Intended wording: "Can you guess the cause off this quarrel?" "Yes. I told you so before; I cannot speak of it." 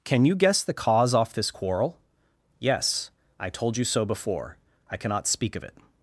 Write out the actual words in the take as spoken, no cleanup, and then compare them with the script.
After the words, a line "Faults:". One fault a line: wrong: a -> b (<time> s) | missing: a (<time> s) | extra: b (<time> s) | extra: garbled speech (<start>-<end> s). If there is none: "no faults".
"Can you guess the cause off this quarrel?" "Yes. I told you so before; I cannot speak of it."
Faults:
no faults